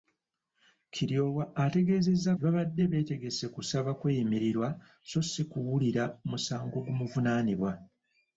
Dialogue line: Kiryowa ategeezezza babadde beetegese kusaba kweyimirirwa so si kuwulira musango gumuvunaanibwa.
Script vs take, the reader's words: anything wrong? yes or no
no